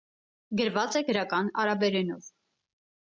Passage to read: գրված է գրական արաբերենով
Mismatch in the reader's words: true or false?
false